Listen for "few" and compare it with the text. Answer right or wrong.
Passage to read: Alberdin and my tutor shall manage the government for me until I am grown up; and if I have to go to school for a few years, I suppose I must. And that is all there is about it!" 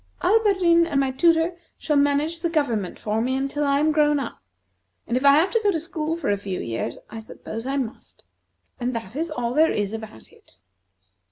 right